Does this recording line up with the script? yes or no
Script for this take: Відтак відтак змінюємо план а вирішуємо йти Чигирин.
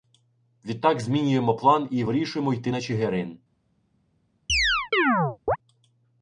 no